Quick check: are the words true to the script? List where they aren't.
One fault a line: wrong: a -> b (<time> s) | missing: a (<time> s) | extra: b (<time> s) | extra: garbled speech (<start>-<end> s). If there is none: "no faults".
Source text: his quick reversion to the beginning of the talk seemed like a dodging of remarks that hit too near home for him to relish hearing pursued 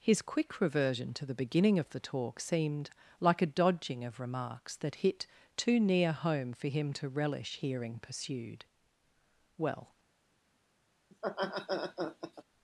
extra: well (9.6 s)